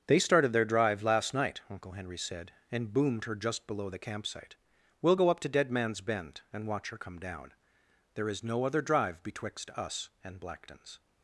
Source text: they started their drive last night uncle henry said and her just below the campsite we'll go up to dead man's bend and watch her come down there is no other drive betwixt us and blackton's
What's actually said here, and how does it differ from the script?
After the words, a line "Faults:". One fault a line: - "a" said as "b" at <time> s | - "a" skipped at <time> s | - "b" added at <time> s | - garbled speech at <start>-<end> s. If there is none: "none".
they started their drive last night uncle henry said and boomed her just below the campsite we'll go up to dead man's bend and watch her come down there is no other drive betwixt us and blackton's
Faults:
- "boomed" added at 2.9 s